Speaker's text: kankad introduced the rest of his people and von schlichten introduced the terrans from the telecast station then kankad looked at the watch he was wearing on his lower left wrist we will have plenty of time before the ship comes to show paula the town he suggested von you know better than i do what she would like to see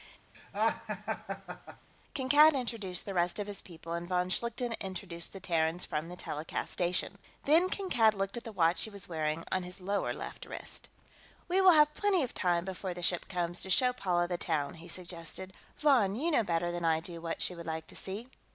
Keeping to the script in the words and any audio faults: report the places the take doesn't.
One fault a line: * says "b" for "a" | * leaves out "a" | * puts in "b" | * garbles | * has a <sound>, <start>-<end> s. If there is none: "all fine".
* has a laugh, 0.3-1.9 s